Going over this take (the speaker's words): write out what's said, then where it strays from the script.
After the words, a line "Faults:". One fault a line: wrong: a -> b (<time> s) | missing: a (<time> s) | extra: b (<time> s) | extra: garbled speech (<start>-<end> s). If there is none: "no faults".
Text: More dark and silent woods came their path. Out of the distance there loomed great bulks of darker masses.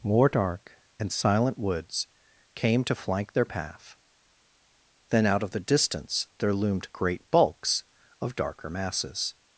More dark and silent woods came to flank their path. Then out of the distance there loomed great bulks of darker masses.
Faults:
extra: to flank (2.8 s)
extra: Then (5.1 s)